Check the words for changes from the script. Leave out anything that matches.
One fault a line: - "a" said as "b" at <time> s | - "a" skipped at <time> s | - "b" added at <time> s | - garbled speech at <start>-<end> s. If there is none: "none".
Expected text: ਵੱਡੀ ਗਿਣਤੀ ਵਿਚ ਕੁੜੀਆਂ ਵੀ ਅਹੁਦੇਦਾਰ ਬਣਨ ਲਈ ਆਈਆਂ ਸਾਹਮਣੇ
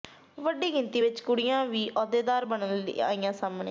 none